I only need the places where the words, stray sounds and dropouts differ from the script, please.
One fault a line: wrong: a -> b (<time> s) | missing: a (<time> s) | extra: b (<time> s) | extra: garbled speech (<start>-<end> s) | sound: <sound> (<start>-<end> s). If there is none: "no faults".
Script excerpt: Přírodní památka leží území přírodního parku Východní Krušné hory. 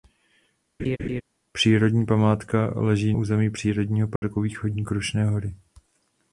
sound: laugh (0.8-1.2 s)
sound: dropout (4.2-4.2 s)